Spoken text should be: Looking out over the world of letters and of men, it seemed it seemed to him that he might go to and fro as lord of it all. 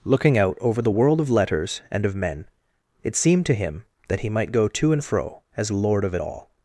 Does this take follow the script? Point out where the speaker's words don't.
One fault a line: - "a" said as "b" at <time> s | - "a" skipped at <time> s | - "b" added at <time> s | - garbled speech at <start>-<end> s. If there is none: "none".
- "it seemed" skipped at 3.5 s